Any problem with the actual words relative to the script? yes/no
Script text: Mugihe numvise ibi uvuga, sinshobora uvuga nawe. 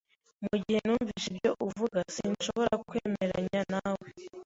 yes